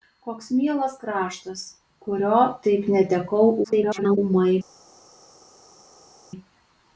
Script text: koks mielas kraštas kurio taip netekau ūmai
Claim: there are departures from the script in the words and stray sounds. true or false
true